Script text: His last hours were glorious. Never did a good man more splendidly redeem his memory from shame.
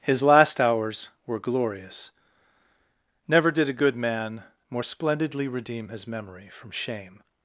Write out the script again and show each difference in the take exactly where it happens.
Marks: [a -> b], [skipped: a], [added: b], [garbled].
His last hours were glorious. Never did a good man more splendidly redeem his memory from shame.